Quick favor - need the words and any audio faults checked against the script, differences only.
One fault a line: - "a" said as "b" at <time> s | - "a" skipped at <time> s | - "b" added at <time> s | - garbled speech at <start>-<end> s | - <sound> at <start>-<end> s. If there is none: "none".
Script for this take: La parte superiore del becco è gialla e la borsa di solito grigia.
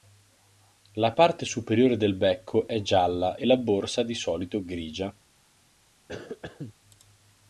- cough at 6.1-6.7 s